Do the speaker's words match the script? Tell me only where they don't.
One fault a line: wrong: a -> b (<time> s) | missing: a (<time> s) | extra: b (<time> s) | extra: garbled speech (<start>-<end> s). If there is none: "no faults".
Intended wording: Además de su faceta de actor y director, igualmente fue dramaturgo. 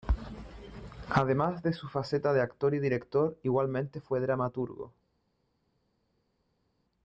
no faults